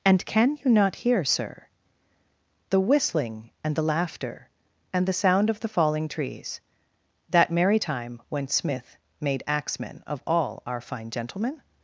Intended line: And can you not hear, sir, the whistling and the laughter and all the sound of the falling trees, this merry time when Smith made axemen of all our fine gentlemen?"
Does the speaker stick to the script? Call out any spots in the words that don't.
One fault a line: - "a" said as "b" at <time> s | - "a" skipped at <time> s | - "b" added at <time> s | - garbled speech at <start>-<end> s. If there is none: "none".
- "all" skipped at 5.0 s
- "this" said as "that" at 7.3 s